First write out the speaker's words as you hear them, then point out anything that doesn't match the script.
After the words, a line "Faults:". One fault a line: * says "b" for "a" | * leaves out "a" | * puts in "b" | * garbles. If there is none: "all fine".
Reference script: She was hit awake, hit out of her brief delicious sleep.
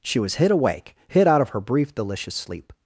She was hit awake, hit out of her brief delicious sleep.
Faults:
all fine